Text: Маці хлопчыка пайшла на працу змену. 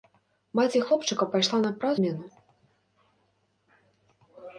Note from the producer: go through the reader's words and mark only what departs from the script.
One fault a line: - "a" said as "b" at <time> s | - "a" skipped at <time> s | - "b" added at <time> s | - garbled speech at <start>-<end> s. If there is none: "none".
none